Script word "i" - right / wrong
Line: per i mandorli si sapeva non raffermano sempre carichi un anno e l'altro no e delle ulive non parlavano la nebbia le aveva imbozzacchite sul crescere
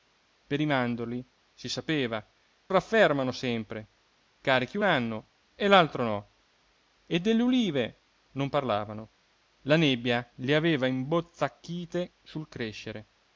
right